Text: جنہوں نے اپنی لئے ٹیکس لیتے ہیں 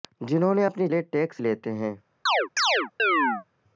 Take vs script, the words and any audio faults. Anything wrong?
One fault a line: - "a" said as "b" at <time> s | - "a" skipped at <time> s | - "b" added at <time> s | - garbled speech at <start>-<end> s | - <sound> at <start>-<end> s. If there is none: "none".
- chirp at 2.3-3.4 s